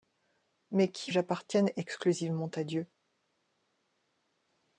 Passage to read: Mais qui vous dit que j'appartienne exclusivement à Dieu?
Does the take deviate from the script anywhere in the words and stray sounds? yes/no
yes